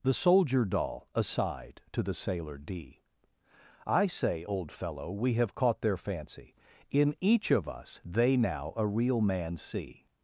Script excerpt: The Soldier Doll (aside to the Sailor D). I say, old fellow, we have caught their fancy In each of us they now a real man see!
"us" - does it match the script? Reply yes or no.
yes